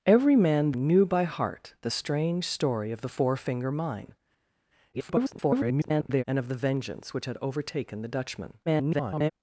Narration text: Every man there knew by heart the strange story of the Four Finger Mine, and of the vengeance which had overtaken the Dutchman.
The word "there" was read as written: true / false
false